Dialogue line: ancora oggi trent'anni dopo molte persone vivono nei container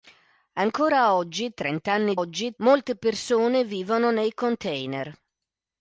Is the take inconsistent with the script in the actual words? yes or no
yes